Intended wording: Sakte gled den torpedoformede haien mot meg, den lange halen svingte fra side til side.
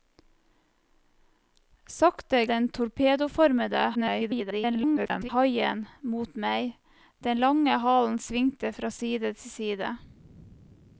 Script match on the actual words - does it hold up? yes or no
no